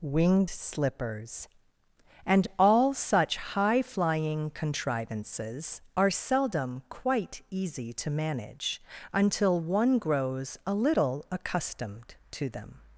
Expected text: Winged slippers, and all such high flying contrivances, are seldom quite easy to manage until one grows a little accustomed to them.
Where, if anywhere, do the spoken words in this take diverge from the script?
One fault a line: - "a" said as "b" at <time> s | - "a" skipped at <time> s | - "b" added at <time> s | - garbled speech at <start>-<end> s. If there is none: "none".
none